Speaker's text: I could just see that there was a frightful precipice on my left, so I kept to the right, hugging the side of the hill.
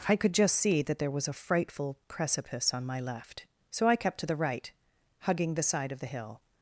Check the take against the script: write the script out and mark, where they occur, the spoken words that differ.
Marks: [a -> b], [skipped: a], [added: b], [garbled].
I could just see that there was a frightful precipice on my left, so I kept to the right, hugging the side of the hill.